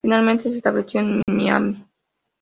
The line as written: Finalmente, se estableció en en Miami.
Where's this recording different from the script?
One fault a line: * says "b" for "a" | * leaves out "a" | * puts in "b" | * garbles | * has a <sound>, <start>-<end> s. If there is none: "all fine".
* has a dropout, 1.2-1.3 s